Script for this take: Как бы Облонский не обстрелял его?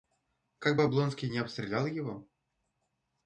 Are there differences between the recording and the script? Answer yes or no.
no